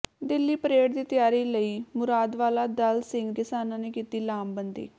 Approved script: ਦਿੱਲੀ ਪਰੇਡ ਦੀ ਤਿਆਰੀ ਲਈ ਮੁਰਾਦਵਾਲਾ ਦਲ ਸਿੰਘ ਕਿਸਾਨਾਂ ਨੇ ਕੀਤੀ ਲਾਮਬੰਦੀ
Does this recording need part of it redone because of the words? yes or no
no